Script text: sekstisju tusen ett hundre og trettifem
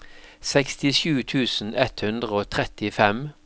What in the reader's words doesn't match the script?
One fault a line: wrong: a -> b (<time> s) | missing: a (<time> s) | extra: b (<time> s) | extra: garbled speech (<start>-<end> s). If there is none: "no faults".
no faults